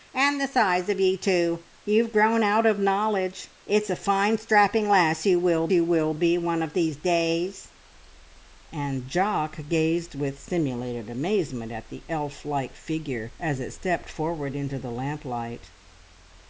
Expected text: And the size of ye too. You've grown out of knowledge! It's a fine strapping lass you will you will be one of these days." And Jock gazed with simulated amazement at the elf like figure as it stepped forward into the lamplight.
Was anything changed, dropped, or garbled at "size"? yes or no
no